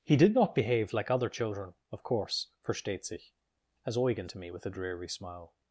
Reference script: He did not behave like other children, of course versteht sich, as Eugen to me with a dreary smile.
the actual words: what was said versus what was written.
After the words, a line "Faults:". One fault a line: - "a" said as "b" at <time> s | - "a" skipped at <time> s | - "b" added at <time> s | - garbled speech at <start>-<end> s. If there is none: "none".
He did not behave like other children, of course versteht sich, as Eugen to me with a dreary smile.
Faults:
none